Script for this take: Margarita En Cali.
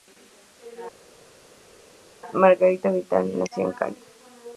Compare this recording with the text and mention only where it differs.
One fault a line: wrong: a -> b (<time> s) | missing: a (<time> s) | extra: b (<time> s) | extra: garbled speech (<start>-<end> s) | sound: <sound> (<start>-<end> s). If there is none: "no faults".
extra: Vidal nació (2.9 s)